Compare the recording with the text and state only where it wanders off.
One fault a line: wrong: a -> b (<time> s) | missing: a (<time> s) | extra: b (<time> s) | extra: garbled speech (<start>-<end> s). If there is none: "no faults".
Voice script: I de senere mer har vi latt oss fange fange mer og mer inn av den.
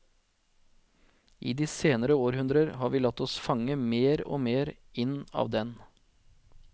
wrong: mer -> århundrer (2.2 s)
missing: fange (3.8 s)